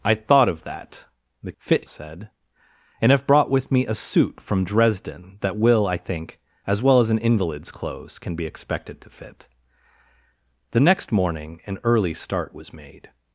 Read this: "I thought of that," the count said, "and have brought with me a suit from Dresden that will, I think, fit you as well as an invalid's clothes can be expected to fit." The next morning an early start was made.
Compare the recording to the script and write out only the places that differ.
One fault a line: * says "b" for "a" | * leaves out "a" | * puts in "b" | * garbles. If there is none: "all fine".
* says "fit" for "count"
* leaves out "fit you"